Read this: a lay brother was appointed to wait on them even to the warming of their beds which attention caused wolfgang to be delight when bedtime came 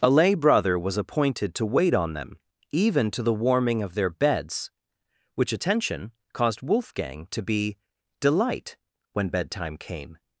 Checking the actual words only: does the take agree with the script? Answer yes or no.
yes